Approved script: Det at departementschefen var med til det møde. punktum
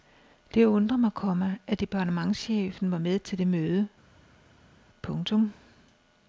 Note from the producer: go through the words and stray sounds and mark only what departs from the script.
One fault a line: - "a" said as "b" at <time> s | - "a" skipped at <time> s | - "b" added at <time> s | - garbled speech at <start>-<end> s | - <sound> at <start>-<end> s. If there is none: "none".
- "undrer mig komma" added at 0.7 s